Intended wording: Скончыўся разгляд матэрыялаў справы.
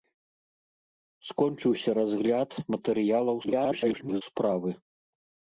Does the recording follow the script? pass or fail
fail